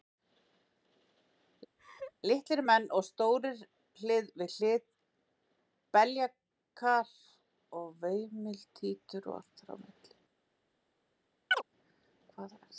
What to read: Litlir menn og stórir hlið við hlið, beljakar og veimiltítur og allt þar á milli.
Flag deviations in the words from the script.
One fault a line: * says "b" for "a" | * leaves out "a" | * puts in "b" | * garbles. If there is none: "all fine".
all fine